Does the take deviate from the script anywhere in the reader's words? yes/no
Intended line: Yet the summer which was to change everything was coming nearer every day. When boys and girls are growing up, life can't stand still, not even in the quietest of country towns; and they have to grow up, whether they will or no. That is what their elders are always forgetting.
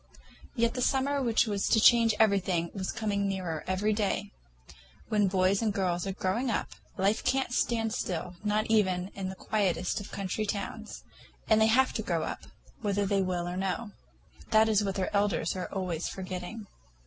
no